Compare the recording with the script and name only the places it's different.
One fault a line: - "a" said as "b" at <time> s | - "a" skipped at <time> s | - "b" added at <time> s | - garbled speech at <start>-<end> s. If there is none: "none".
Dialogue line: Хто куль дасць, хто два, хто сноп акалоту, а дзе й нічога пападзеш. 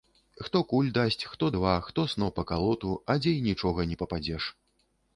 - "не" added at 3.9 s